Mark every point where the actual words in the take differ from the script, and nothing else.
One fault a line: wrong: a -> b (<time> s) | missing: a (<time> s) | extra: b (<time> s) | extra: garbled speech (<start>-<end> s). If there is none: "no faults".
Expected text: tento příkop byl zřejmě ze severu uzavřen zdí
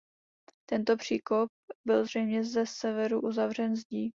no faults